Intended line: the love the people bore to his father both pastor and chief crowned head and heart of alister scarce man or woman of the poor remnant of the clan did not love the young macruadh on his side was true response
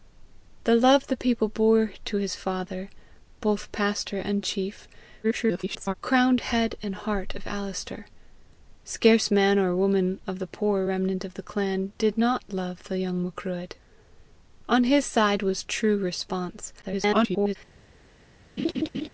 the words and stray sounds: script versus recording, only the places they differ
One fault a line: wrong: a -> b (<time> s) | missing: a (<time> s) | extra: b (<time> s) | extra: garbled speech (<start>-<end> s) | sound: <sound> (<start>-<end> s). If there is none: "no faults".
extra: garbled speech (5.2-5.9 s)
extra: garbled speech (16.8-17.6 s)
sound: laugh (18.6-19.1 s)